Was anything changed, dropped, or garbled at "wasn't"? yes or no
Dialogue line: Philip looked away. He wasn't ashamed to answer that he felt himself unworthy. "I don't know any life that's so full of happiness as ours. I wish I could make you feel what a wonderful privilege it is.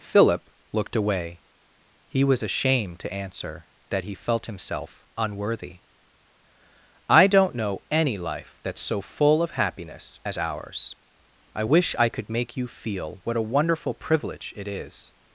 yes